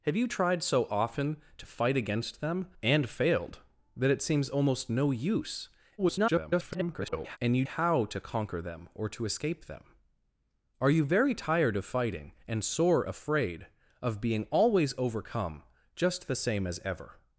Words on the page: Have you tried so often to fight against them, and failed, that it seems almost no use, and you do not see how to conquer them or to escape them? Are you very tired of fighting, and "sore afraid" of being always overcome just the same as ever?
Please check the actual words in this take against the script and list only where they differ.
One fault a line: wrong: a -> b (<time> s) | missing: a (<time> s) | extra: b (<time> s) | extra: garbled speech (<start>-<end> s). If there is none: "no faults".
extra: garbled speech (6.0-7.4 s)
missing: do not see (7.6 s)